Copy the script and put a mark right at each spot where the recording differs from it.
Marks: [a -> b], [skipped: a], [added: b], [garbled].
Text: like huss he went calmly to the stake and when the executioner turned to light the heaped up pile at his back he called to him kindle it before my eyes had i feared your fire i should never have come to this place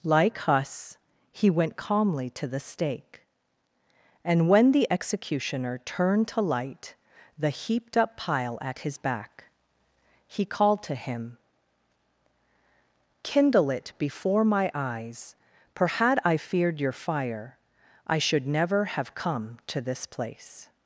like huss he went calmly to the stake and when the executioner turned to light the heaped up pile at his back he called to him kindle it before my eyes [added: for] had i feared your fire i should never have come to this place